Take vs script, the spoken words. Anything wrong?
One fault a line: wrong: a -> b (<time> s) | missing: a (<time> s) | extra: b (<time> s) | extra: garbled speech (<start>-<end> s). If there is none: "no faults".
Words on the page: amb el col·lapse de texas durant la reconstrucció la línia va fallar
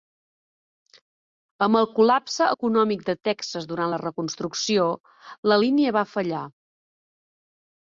extra: econòmic (2.5 s)